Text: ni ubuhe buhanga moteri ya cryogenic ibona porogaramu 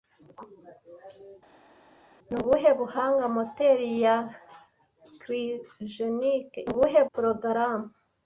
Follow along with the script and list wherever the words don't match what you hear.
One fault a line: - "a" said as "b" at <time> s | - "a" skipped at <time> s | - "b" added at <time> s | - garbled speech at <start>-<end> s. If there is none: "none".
- "ibona" said as "ubuhe" at 6.7 s